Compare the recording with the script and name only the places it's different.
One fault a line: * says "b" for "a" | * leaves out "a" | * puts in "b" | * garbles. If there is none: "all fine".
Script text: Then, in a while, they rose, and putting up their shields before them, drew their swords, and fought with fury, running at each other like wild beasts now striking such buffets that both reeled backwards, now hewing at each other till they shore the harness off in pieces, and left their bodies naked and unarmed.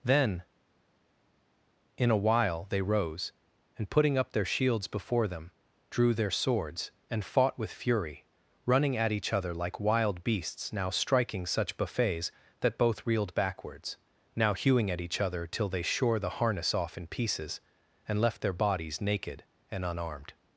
all fine